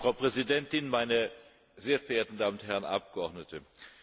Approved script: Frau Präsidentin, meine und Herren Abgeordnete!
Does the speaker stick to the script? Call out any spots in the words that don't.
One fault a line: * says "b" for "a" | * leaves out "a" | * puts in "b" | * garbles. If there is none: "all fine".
* puts in "sehr verehrten Damen"